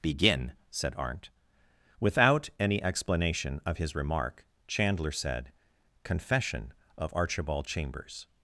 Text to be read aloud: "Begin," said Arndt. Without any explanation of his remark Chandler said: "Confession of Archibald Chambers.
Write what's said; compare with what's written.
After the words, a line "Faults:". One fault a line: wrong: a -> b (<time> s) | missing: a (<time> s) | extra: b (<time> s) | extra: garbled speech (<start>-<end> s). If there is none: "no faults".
"Begin," said Arndt. Without any explanation of his remark Chandler said: "Confession of Archibald Chambers.
Faults:
no faults